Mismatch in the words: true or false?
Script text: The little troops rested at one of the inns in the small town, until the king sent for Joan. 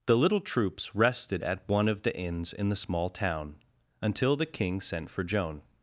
false